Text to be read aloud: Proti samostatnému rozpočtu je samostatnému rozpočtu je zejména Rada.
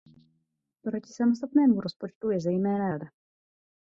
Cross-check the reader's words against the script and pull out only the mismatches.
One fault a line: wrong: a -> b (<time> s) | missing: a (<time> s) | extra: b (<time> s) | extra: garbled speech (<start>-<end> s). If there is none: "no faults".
missing: samostatnému rozpočtu je (2.4 s)